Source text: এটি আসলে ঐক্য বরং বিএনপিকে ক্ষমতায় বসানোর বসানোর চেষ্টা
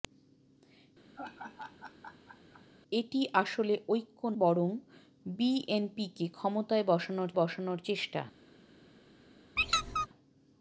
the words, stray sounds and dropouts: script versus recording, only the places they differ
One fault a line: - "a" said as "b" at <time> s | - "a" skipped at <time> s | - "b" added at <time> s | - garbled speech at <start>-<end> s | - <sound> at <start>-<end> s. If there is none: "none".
- laugh at 1.2-2.7 s
- squeak at 9.6-10.1 s